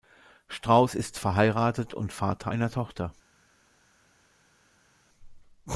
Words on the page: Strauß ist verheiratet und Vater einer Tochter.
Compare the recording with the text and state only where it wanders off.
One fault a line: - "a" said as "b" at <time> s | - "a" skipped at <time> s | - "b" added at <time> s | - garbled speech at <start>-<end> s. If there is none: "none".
none